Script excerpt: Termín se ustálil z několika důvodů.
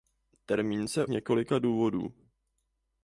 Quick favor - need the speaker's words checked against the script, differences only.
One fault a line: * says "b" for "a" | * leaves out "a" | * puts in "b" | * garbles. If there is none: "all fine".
* leaves out "ustálil"